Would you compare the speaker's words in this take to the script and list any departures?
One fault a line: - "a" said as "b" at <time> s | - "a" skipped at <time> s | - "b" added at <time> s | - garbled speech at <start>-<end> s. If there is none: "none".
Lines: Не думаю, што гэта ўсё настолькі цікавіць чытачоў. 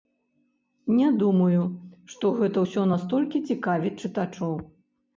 none